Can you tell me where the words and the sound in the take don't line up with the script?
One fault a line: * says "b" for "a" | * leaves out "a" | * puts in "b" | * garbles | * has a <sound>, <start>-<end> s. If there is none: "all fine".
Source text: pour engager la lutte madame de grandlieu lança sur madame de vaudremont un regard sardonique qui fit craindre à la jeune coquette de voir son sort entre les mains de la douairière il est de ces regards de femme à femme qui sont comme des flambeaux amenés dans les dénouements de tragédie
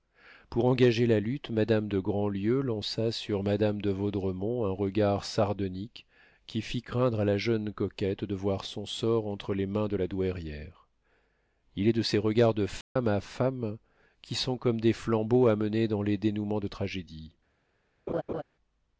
* has a dropout, 12.8-13.0 s
* has a laugh, 18.1-18.4 s